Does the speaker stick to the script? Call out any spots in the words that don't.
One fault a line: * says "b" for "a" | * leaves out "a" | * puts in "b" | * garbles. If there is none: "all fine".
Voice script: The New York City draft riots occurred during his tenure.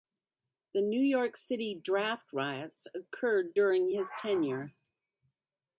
all fine